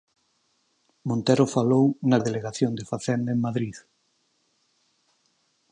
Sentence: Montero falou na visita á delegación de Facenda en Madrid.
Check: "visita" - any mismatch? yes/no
yes